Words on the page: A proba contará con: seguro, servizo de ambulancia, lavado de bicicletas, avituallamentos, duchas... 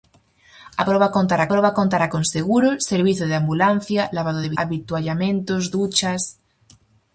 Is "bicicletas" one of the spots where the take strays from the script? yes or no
yes